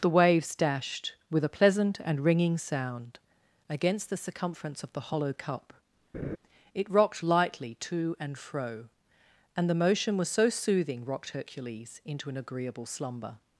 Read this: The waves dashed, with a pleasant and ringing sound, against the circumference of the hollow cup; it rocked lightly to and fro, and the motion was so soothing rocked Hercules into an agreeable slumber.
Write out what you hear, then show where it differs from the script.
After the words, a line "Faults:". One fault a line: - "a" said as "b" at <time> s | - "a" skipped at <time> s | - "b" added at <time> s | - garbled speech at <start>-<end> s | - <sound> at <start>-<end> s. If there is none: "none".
The waves dashed, with a pleasant and ringing sound, against the circumference of the hollow cup; it rocked lightly to and fro, and the motion was so soothing rocked Hercules into an agreeable slumber.
Faults:
- laugh at 6.1-6.4 s